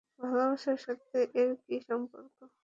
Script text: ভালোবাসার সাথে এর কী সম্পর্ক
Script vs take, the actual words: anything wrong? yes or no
no